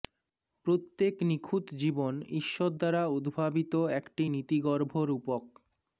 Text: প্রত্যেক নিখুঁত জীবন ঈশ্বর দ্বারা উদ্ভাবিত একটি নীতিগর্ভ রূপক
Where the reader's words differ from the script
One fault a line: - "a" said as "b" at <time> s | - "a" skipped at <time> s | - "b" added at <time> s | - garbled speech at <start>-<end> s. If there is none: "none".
none